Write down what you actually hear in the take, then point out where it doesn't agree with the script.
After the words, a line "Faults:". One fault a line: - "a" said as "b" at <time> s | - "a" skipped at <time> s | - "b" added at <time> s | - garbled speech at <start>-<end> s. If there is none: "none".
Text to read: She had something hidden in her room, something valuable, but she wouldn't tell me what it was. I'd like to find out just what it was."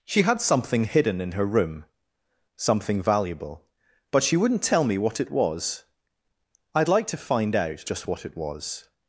She had something hidden in her room, something valuable, but she wouldn't tell me what it was. I'd like to find out just what it was."
Faults:
none